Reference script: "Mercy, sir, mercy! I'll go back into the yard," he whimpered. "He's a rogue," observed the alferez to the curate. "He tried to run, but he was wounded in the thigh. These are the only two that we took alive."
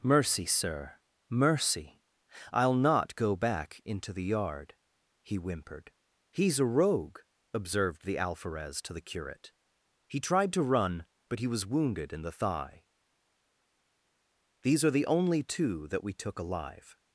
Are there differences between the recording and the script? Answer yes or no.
yes